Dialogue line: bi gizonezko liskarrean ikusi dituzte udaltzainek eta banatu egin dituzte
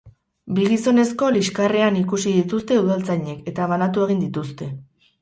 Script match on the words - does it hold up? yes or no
yes